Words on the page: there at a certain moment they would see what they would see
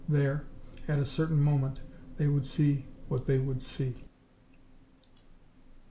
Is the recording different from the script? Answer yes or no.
no